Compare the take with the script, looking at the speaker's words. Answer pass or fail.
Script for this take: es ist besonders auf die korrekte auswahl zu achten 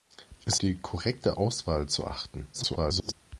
fail